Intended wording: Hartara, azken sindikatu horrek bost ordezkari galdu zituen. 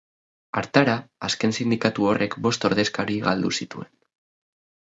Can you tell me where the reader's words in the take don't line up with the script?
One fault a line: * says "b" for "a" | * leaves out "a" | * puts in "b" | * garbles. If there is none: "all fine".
all fine